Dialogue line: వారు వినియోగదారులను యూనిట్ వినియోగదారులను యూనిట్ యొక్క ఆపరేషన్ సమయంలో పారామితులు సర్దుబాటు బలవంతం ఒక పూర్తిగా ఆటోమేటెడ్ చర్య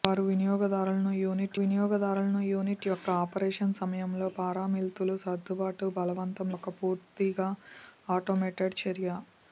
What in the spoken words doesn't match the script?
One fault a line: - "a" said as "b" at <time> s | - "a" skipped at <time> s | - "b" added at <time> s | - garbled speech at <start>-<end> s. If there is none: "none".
none